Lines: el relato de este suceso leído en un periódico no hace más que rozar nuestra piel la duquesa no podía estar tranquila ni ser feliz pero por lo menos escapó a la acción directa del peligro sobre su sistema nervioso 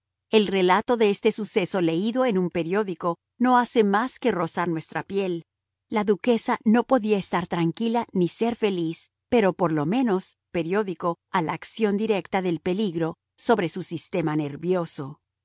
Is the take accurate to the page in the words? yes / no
no